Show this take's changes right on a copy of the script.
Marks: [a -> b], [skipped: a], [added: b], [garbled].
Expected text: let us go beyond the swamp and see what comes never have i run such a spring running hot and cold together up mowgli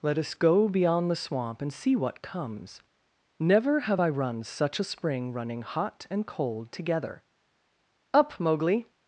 let us go beyond the swamp and see what comes never have i run such a spring running hot and cold together up mowgli